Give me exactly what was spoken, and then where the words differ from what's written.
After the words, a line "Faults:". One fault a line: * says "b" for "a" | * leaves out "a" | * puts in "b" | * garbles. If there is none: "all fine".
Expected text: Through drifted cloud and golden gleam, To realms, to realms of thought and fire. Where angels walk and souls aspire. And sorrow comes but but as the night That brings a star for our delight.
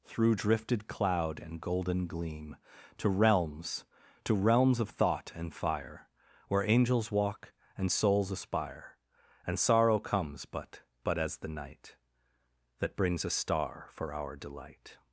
Through drifted cloud and golden gleam, To realms, to realms of thought and fire. Where angels walk and souls aspire. And sorrow comes but but as the night That brings a star for our delight.
Faults:
all fine